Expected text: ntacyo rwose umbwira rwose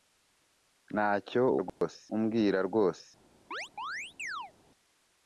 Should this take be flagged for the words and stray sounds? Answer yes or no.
yes